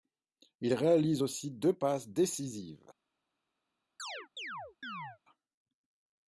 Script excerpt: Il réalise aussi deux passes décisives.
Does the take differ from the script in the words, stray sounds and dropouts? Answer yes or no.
yes